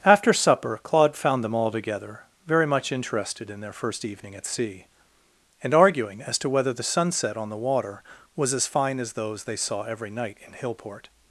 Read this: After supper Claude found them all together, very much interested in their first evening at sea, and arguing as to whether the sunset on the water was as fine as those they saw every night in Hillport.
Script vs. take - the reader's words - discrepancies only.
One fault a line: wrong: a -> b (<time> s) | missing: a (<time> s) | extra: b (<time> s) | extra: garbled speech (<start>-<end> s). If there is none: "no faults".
no faults